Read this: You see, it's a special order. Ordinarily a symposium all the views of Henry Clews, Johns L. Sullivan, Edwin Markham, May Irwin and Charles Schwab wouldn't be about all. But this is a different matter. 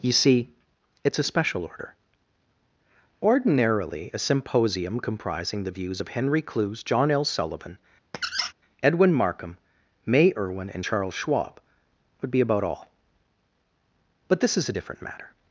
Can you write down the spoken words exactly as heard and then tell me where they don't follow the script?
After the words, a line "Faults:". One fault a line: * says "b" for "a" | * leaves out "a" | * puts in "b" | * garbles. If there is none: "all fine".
You see, it's a special order. Ordinarily a symposium comprising the views of Henry Clews, John L. Sullivan, Edwin Markham, May Irwin and Charles Schwab would be about all. But this is a different matter.
Faults:
* says "comprising" for "all"
* says "John" for "Johns"
* says "would" for "wouldn't"